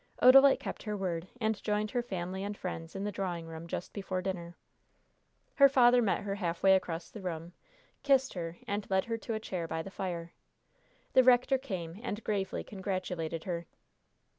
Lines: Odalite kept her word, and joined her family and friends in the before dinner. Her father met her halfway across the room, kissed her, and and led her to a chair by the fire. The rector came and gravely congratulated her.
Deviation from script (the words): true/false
true